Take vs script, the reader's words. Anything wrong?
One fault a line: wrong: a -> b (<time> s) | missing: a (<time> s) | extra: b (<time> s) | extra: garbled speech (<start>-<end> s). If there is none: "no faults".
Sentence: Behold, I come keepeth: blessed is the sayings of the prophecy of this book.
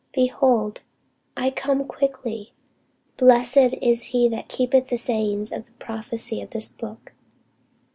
wrong: keepeth -> quickly (1.9 s)
extra: he that keepeth (4.0 s)